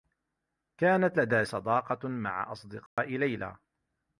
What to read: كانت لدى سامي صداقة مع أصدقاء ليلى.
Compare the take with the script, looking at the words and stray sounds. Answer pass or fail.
fail